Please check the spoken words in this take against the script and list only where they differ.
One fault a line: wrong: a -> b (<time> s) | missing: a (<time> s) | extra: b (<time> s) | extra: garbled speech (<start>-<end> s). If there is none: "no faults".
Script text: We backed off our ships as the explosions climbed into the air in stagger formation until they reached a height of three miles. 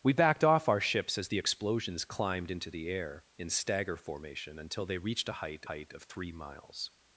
extra: height (5.7 s)